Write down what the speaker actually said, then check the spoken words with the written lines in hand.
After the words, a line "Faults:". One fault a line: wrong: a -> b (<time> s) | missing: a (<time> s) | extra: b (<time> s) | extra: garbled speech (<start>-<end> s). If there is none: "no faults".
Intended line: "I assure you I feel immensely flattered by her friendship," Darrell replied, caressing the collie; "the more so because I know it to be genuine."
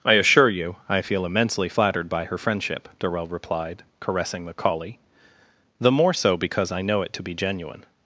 "I assure you I feel immensely flattered by her friendship," Darrell replied, caressing the collie; "the more so because I know it to be genuine."
Faults:
no faults